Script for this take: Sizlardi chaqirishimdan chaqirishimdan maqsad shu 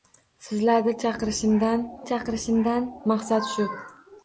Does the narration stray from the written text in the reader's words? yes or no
no